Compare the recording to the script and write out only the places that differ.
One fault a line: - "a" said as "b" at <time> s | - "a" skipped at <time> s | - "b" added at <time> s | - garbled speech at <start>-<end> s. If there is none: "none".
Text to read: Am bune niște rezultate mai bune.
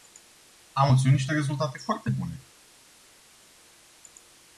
- "bune" said as "obținut" at 0.9 s
- "mai" said as "foarte" at 1.8 s